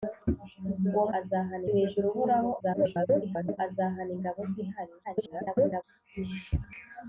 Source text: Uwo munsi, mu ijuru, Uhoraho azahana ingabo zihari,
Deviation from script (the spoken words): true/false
true